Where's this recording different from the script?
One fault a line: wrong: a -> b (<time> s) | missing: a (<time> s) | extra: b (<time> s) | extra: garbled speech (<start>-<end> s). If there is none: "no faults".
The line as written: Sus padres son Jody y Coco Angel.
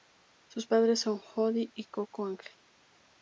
no faults